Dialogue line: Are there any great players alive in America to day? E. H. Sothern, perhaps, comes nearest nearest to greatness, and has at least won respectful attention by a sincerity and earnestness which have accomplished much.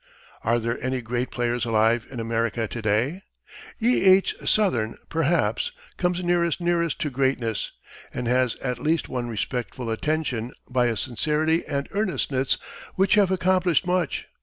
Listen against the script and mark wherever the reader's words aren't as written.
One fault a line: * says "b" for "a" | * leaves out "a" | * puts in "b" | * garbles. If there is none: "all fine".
all fine